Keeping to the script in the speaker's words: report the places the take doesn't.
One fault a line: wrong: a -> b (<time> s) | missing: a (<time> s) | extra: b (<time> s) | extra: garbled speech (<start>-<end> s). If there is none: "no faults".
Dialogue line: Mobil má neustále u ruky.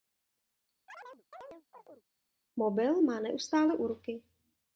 no faults